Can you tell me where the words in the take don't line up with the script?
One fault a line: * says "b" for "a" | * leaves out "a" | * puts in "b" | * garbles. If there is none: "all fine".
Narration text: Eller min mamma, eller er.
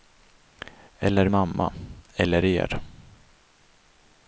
* leaves out "min"